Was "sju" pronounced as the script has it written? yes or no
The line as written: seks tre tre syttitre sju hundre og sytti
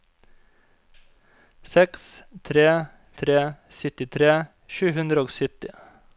yes